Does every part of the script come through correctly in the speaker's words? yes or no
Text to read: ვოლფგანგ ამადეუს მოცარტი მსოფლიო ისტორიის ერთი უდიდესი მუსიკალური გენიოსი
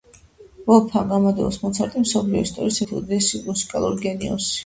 yes